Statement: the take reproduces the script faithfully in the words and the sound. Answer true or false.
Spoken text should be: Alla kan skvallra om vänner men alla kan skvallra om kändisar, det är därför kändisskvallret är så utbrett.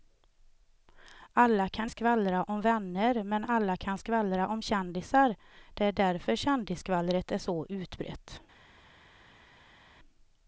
true